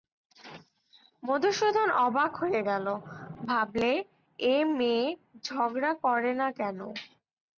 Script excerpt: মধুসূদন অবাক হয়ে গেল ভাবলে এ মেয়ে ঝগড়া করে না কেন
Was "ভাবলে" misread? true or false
false